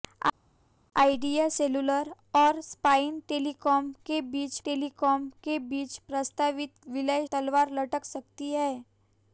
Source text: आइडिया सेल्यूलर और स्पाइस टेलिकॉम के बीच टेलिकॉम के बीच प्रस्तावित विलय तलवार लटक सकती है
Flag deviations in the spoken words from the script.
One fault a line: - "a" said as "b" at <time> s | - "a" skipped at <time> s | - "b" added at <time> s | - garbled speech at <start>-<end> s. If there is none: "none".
none